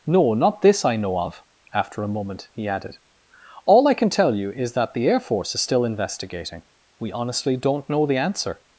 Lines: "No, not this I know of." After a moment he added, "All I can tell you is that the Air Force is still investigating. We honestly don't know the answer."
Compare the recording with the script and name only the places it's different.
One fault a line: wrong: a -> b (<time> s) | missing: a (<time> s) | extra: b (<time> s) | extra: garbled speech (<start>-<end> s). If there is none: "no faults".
no faults